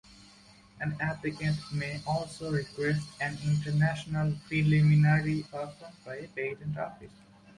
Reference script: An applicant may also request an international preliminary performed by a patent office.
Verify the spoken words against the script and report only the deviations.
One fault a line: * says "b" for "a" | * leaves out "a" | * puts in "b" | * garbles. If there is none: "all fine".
all fine